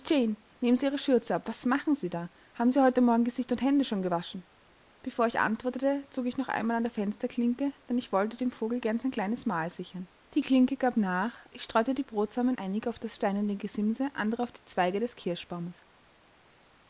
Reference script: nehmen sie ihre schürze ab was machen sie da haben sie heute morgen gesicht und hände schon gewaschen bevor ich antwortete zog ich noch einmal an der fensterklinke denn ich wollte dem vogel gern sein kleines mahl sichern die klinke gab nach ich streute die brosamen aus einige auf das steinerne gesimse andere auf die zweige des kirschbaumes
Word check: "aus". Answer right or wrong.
wrong